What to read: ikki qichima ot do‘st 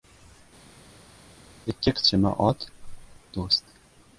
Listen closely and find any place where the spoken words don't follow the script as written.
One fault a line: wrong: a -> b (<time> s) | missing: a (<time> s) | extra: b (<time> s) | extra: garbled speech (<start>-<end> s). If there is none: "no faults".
no faults